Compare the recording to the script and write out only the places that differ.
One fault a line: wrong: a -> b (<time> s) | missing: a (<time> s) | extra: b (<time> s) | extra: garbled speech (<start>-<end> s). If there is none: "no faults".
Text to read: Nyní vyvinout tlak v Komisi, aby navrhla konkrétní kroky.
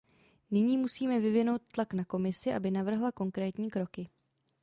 extra: musíme (0.8 s)
wrong: v -> na (1.9 s)